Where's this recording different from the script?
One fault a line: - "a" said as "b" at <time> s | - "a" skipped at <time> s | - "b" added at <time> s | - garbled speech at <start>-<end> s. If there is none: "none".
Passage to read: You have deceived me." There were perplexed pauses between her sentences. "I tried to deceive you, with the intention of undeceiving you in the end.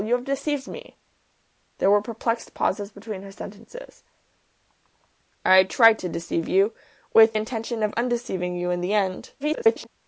- "the" skipped at 7.3 s
- garbled speech at 9.4-9.9 s